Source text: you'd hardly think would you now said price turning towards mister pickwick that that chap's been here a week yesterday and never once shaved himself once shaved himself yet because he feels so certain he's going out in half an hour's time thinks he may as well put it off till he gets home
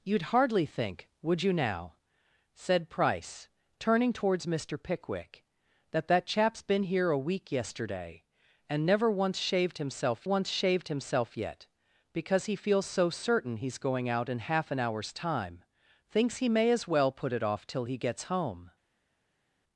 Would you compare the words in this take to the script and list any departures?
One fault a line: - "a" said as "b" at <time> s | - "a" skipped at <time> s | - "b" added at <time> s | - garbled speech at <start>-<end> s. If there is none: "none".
none